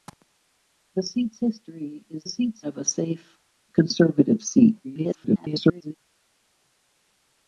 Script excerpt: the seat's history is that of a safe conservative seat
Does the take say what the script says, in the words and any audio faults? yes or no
no